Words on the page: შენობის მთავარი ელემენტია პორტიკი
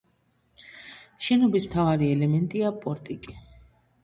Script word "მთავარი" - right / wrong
right